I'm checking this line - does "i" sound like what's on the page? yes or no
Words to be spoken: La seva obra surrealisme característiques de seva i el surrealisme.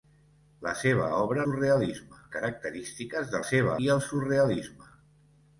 yes